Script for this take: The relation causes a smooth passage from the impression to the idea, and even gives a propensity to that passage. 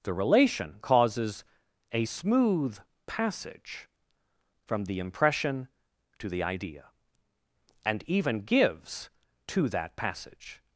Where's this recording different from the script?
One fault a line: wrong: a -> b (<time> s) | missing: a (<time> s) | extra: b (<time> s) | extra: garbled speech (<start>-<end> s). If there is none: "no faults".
missing: a propensity (9.1 s)